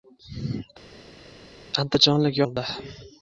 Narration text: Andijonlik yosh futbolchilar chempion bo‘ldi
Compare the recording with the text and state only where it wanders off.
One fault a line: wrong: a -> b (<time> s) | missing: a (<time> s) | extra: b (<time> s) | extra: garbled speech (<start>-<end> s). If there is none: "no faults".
missing: yosh futbolchilar chempion (2.4 s)